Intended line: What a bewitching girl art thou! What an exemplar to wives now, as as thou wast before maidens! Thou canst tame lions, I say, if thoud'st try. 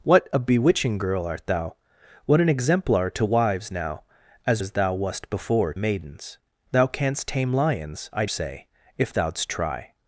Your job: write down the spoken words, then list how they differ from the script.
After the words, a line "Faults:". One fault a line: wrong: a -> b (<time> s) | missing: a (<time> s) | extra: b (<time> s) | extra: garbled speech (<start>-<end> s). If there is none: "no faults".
What a bewitching girl art thou! What an exemplar to wives now, as as thou wast before maidens! Thou canst tame lions, I say, if thoud'st try.
Faults:
no faults